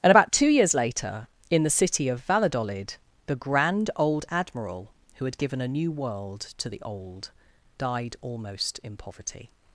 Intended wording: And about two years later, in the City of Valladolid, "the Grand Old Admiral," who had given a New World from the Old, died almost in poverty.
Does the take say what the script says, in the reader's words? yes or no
no